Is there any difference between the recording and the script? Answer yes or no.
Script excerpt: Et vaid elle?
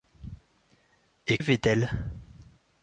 no